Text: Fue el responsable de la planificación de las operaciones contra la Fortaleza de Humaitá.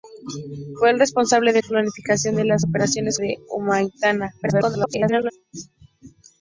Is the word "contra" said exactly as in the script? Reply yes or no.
no